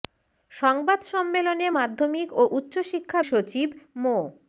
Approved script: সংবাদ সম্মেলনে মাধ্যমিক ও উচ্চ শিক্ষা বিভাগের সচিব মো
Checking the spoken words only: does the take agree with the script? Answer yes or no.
no